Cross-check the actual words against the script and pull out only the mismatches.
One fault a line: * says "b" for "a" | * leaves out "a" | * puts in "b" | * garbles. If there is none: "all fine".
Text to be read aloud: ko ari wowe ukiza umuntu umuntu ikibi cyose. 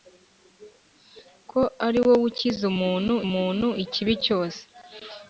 all fine